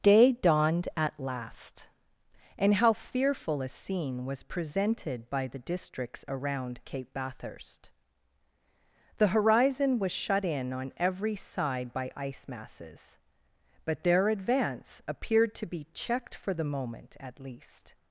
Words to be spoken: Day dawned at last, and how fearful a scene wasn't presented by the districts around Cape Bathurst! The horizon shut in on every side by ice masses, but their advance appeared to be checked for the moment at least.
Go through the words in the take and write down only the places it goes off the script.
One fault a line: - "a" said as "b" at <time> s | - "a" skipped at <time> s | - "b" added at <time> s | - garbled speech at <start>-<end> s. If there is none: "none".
- "wasn't" said as "was" at 4.2 s
- "was" added at 10.0 s